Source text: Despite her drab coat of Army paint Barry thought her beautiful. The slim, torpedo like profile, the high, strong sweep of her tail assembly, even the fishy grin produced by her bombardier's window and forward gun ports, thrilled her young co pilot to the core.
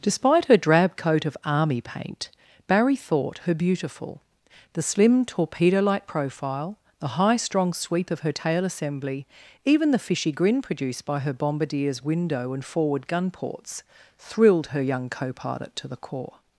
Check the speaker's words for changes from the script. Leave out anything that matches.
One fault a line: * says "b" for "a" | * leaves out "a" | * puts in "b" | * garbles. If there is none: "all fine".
all fine